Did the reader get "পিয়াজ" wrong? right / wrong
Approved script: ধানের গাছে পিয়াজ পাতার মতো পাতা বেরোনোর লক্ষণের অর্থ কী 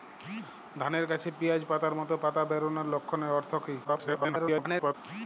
right